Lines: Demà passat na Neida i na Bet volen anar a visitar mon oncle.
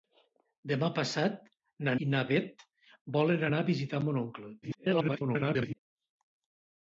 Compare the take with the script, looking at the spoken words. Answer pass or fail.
fail